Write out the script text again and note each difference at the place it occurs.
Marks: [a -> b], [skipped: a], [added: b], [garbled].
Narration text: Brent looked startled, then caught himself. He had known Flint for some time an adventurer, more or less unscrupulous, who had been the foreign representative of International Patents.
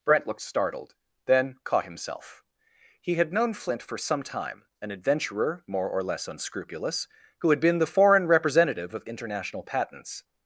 Brent looked startled, then caught himself. He had known Flint for some time an adventurer, more or less unscrupulous, who had been the foreign representative of International Patents.